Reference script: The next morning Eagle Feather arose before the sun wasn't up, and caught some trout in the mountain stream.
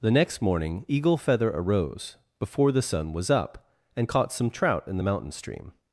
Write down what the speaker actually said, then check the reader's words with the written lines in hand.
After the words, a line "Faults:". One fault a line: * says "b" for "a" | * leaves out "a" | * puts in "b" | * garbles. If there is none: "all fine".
The next morning Eagle Feather arose before the sun was up, and caught some trout in the mountain stream.
Faults:
* says "was" for "wasn't"